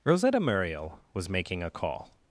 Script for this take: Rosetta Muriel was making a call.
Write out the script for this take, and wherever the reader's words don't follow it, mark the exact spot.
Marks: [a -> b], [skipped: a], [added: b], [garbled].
Rosetta Muriel was making a call.